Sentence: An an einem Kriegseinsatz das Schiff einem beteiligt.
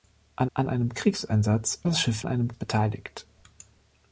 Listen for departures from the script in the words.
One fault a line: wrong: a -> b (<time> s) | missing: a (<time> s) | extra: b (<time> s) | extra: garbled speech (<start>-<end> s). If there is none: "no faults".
no faults